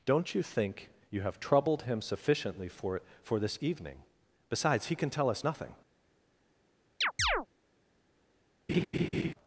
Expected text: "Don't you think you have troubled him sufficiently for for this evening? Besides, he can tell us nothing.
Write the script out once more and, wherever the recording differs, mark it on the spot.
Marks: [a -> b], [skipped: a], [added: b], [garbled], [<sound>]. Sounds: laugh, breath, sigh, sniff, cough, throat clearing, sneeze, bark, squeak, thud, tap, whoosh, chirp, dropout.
"Don't you think you have troubled him sufficiently for for this evening? Besides, he can tell us nothing. [chirp] [laugh]